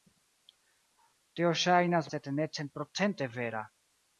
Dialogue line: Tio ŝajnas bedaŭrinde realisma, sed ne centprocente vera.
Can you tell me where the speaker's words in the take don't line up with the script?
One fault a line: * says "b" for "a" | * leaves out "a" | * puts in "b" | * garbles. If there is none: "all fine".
* leaves out "bedaŭrinde realisma"